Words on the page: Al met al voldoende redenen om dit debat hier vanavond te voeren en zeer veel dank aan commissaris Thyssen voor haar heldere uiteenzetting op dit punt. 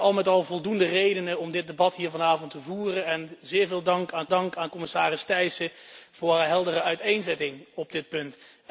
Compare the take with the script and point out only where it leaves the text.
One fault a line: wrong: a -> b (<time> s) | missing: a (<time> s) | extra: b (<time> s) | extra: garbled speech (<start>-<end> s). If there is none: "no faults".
extra: dank aan (4.3 s)